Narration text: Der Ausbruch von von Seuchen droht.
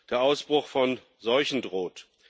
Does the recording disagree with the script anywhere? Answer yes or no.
yes